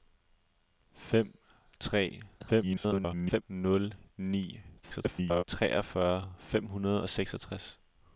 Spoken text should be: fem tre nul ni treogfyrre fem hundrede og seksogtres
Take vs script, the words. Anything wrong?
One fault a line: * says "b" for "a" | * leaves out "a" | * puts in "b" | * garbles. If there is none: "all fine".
* garbles
* garbles